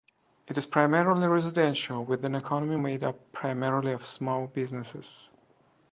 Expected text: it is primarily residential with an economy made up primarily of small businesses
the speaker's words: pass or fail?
pass